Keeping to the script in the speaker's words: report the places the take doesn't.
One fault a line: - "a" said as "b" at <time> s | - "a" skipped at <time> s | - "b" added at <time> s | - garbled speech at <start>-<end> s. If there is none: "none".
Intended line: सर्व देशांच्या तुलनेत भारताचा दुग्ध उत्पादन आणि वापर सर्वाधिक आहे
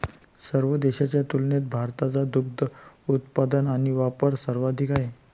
none